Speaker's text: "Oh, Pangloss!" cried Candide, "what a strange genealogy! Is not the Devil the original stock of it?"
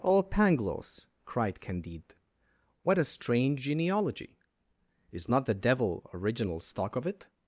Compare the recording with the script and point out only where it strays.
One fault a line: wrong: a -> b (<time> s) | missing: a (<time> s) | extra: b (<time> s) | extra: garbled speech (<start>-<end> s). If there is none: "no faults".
missing: the (6.1 s)